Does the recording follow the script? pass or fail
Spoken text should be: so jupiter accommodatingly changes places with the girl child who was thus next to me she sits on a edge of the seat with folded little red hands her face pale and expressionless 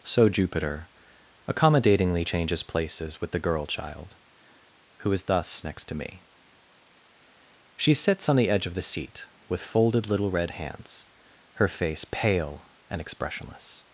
fail